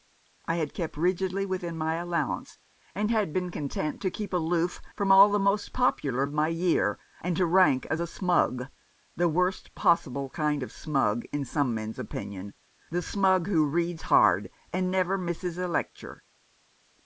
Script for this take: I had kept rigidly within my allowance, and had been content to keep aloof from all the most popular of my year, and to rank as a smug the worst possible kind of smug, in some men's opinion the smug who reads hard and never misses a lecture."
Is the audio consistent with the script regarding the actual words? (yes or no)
yes